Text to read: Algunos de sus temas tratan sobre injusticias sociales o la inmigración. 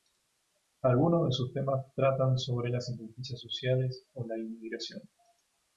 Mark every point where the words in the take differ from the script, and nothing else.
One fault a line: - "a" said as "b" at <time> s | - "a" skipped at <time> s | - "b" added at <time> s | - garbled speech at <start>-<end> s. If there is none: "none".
- "las" added at 2.7 s